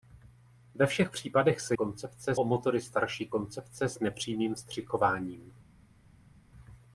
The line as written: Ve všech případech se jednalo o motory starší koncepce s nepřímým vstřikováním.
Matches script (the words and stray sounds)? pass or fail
fail